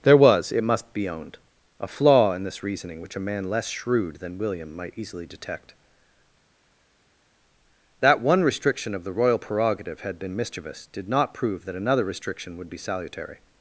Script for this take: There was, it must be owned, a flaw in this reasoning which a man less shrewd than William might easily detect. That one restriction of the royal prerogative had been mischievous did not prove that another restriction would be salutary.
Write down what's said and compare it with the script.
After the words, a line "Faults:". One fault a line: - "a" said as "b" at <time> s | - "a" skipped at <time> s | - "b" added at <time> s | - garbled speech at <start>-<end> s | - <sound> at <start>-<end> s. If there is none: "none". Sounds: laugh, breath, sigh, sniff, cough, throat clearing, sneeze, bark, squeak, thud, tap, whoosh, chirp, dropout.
There was, it must be owned, a flaw in this reasoning which a man less shrewd than William might easily detect. That one restriction of the royal prerogative had been mischievous did not prove that another restriction would be salutary.
Faults:
none